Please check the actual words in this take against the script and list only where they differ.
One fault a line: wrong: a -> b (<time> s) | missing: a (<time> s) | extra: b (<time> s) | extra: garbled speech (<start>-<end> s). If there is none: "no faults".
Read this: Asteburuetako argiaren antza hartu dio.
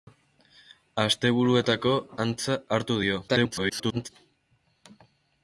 missing: argiaren (1.9 s)
extra: garbled speech (3.3-4.1 s)